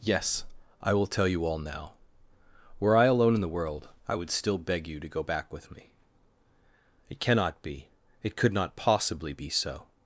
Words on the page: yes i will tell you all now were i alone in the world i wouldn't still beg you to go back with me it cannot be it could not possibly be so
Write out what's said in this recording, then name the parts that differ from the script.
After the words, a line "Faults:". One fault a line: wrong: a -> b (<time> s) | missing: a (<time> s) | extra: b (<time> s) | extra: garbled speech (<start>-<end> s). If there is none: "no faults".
yes i will tell you all now were i alone in the world i would still beg you to go back with me it cannot be it could not possibly be so
Faults:
wrong: wouldn't -> would (4.2 s)